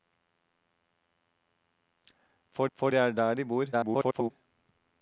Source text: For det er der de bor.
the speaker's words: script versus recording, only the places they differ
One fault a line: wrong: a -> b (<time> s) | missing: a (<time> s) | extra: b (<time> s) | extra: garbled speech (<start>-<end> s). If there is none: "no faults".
extra: for (2.7 s)
extra: garbled speech (3.7-4.3 s)